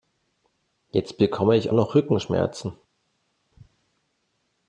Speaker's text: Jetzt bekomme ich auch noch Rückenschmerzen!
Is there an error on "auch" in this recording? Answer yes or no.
yes